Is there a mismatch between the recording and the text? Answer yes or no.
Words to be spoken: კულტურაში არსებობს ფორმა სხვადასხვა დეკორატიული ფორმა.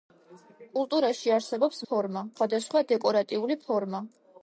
no